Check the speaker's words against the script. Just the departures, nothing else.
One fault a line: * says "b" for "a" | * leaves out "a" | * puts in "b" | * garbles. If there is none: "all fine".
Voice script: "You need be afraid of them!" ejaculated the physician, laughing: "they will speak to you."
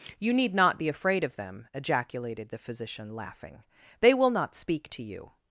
* puts in "not"
* puts in "not"